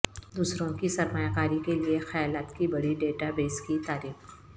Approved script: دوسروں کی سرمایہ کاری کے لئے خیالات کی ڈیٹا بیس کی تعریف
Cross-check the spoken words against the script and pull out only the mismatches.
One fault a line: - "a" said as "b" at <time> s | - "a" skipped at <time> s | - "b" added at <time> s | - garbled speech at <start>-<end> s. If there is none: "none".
- "بڑی" added at 2.7 s